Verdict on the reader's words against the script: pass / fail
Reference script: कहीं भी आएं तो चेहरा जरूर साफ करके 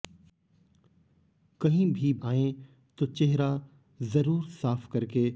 pass